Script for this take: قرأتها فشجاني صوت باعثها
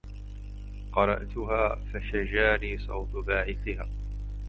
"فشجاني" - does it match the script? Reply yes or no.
yes